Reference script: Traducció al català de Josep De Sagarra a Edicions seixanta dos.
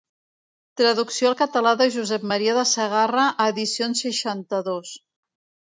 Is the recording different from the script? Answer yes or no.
yes